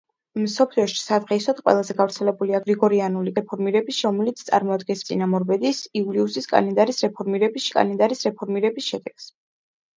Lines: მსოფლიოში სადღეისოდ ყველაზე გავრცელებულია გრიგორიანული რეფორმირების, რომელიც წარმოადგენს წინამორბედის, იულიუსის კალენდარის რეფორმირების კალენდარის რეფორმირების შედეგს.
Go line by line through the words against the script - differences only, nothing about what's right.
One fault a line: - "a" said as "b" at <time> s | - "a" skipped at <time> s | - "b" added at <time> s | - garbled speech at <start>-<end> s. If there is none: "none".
none